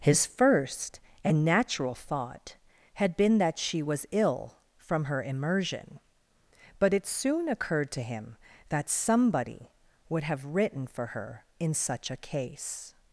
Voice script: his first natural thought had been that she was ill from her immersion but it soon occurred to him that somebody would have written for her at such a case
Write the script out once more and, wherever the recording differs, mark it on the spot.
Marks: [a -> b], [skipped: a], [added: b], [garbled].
his first [added: and] natural thought had been that she was ill from her immersion but it soon occurred to him that somebody would have written for her [at -> in] such a case